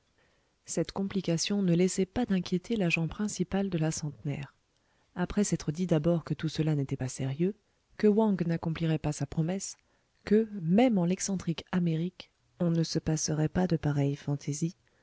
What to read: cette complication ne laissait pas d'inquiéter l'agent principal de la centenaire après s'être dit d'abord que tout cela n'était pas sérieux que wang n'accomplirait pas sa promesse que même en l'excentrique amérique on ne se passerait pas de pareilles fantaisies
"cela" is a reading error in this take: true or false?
false